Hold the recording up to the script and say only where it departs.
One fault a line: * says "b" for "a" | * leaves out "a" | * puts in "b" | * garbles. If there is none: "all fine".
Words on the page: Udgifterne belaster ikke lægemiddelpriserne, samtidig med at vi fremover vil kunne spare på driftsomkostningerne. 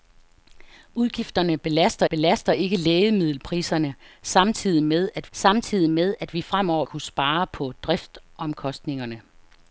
* puts in "belaster"
* puts in "samtidig med at"
* leaves out "vil"